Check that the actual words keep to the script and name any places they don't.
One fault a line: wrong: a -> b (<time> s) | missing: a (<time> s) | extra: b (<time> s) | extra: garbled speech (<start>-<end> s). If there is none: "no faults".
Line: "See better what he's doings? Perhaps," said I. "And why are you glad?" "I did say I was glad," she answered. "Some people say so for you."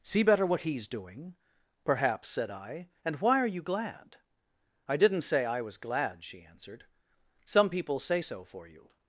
wrong: doings -> doing (0.9 s)
wrong: did -> didn't (5.0 s)